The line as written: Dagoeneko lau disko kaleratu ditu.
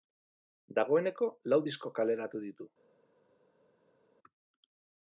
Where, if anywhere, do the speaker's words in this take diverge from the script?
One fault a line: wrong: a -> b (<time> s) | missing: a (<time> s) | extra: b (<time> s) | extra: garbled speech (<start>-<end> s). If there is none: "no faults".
no faults